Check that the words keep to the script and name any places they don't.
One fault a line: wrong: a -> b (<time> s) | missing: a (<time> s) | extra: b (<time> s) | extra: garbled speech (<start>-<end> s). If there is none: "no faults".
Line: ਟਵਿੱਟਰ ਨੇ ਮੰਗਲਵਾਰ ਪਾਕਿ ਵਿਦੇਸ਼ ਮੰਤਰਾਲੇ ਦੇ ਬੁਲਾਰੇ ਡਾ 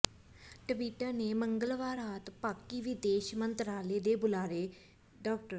extra: ਰਾਤ (1.9 s)